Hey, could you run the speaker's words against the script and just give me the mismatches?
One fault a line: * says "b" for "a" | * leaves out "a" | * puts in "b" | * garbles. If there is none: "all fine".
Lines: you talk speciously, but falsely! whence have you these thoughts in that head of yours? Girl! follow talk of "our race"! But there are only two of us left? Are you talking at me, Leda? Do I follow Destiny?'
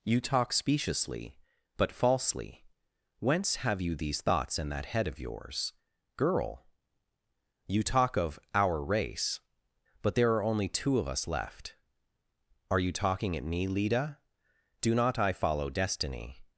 * says "you" for "follow"
* puts in "not"